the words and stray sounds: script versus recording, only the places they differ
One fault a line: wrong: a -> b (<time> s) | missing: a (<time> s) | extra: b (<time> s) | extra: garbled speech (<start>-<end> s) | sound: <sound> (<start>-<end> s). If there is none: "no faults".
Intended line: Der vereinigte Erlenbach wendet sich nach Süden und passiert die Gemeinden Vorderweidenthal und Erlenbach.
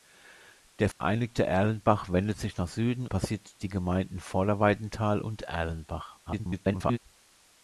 sound: dropout (0.9-1.0 s)
missing: und (3.0 s)
extra: garbled speech (6.3-7.0 s)